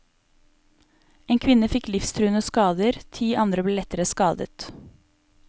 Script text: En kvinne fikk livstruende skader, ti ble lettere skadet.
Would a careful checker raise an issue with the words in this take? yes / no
yes